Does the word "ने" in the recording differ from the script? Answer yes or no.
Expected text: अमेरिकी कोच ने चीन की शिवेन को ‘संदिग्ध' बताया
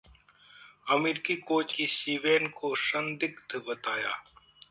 yes